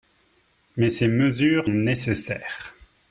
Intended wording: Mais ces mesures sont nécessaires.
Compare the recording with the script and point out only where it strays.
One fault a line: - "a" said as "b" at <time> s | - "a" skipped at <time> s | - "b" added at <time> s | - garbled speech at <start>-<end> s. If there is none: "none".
- "sont" skipped at 1.7 s